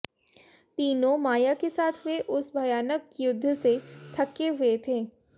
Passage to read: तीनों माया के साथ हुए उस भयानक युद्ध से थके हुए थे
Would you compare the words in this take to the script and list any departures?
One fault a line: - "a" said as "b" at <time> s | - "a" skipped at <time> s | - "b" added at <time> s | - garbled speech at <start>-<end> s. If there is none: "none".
none